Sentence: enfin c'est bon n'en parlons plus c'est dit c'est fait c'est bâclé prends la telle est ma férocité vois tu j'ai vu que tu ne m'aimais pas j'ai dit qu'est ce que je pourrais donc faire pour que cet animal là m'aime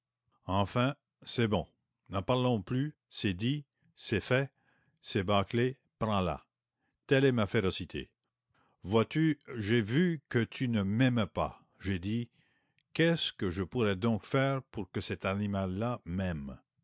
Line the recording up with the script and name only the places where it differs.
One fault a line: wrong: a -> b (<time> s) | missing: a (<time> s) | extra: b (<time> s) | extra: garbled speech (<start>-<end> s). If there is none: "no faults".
no faults